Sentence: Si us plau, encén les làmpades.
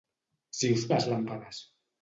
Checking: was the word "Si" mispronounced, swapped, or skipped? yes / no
no